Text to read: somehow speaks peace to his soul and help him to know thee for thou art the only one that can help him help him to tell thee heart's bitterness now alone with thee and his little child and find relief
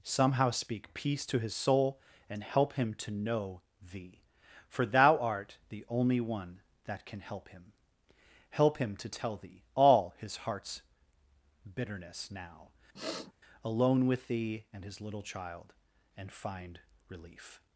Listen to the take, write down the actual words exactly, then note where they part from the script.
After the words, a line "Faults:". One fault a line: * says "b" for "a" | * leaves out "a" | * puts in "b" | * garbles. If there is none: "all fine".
somehow speak peace to his soul and help him to know thee for thou art the only one that can help him help him to tell thee all his heart's bitterness now alone with thee and his little child and find relief
Faults:
* says "speak" for "speaks"
* puts in "all his"